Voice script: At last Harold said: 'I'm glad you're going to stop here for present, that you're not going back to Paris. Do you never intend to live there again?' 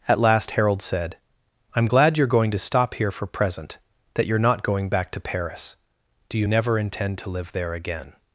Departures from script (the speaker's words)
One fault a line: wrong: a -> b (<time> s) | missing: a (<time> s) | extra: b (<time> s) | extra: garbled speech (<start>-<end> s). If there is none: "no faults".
no faults